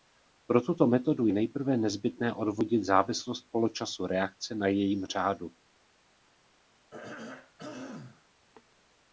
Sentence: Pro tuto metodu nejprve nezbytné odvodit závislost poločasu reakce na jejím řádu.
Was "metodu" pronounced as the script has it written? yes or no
yes